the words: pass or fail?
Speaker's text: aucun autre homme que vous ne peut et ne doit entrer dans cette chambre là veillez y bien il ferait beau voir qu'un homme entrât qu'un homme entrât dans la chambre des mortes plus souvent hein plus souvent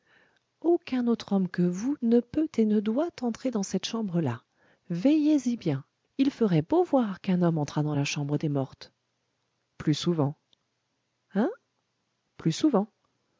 fail